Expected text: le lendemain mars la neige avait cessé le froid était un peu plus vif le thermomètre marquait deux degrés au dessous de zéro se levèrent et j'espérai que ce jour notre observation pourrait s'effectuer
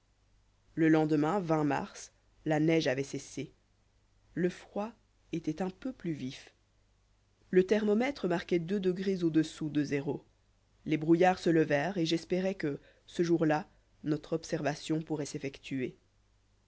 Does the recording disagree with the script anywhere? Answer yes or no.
yes